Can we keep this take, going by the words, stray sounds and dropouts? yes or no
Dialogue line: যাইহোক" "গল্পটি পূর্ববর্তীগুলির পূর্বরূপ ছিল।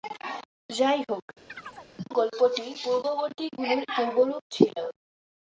no